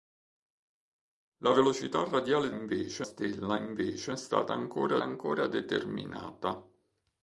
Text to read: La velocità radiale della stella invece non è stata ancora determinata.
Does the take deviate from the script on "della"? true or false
true